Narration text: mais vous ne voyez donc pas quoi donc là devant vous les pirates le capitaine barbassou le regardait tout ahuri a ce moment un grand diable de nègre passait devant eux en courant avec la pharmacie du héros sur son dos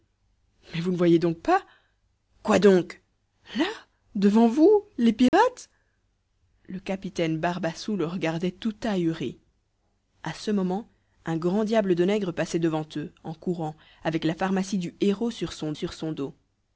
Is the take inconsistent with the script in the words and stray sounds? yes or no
yes